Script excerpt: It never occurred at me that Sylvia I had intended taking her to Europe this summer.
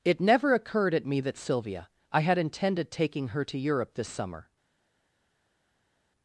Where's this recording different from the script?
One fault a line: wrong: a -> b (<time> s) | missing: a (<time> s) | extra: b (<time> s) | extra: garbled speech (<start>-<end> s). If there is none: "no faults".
no faults